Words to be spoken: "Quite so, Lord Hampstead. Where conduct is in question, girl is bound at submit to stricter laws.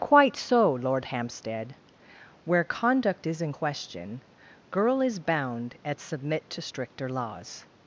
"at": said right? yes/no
yes